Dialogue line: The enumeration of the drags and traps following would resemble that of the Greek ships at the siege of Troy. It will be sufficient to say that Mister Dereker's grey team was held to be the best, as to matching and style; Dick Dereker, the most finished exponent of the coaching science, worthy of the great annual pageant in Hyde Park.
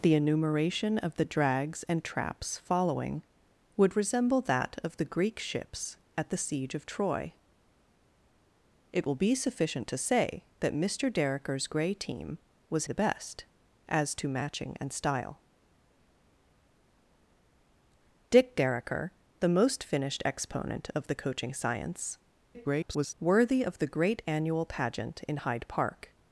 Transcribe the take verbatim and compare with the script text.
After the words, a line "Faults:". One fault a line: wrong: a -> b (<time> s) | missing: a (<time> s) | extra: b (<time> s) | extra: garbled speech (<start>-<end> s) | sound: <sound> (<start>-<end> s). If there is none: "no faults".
The enumeration of the drags and traps following would resemble that of the Greek ships at the siege of Troy. It will be sufficient to say that Mister Dereker's grey team was the best, as to matching and style; Dick Dereker, the most finished exponent of the coaching science, [garbled] worthy of the great annual pageant in Hyde Park.
Faults:
missing: held to be (12.9 s)
extra: garbled speech (22.5-23.1 s)